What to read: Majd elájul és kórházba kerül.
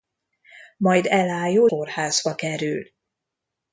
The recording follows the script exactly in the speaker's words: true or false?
false